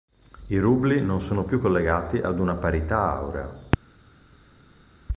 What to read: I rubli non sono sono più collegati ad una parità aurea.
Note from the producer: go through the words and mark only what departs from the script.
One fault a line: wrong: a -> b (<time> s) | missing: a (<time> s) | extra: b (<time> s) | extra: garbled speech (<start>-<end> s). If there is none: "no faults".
missing: sono (1.4 s)